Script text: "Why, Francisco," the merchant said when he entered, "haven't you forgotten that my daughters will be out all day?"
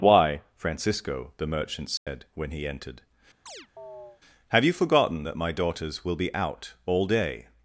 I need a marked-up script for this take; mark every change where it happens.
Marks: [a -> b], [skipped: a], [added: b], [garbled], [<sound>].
"Why, Francisco," the merchant said [dropout] when he entered, [chirp] ["haven't -> have] you forgotten that my daughters will be out all day?"